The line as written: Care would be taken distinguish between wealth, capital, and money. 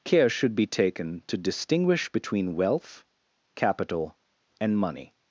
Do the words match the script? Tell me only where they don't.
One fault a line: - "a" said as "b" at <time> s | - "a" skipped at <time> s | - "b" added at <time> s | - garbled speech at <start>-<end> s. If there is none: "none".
- "would" said as "should" at 0.3 s
- "to" added at 1.3 s